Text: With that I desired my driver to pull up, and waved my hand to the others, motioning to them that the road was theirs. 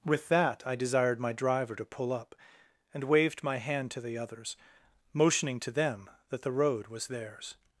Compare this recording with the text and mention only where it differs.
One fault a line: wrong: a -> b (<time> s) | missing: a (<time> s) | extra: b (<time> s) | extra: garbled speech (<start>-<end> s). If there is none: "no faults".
no faults